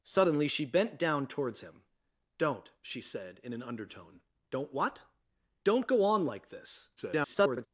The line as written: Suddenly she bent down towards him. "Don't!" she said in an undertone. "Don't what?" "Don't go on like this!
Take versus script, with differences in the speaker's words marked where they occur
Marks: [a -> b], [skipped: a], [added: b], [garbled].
Suddenly she bent down towards him. "Don't!" she said in an undertone. "Don't what?" "Don't go on like this! [garbled]